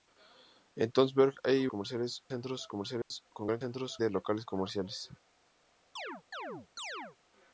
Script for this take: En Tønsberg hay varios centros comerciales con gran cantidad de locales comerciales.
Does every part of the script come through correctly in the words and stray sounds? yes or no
no